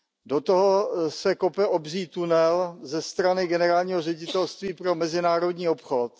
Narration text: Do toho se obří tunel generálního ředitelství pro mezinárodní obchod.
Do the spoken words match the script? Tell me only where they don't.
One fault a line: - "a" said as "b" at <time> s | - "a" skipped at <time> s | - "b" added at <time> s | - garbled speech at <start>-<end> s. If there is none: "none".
- "kope" added at 1.3 s
- "ze strany" added at 2.8 s